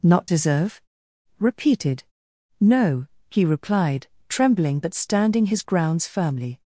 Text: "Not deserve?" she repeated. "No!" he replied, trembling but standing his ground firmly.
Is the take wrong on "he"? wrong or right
right